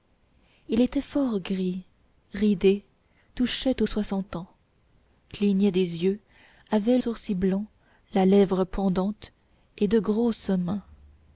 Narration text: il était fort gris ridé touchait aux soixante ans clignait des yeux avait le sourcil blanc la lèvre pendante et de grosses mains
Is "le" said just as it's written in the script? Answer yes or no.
no